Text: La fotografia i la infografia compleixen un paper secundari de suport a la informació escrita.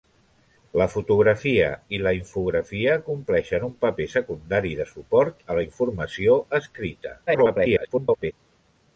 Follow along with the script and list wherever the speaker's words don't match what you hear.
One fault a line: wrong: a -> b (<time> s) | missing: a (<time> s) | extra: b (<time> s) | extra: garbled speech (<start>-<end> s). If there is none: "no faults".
extra: garbled speech (7.3-8.3 s)